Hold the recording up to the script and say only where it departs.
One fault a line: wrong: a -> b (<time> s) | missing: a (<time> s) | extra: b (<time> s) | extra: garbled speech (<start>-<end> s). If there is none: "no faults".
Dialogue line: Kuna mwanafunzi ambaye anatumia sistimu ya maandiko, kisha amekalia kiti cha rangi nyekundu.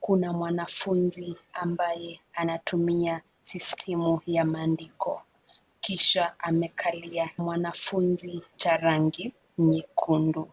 wrong: kiti -> mwanafunzi (7.4 s)